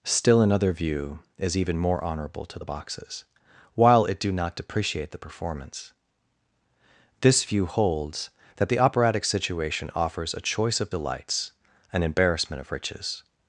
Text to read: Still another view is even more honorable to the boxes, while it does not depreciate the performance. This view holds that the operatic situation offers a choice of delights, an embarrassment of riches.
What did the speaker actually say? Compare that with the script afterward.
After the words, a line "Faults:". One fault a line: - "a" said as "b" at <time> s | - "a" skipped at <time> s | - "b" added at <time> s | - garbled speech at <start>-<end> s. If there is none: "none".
Still another view is even more honorable to the boxes, while it do not depreciate the performance. This view holds that the operatic situation offers a choice of delights, an embarrassment of riches.
Faults:
- "does" said as "do" at 4.2 s